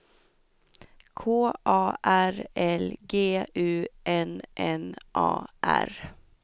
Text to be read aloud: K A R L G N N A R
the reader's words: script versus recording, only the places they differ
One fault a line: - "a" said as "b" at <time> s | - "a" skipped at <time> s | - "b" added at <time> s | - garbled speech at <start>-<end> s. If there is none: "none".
- "U" added at 3.5 s